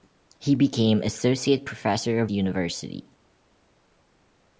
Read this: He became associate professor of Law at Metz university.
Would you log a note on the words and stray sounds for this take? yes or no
yes